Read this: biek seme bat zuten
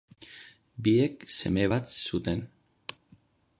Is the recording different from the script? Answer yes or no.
no